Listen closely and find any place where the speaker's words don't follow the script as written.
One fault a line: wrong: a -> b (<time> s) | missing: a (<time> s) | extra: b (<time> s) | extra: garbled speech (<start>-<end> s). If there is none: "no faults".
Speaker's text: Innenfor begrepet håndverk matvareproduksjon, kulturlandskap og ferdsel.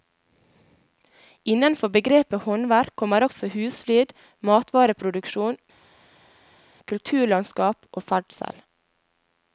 extra: kommer også husflid (3.0 s)